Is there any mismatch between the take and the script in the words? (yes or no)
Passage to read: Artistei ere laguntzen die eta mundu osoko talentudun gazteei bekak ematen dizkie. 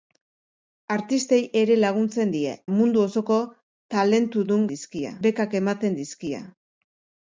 yes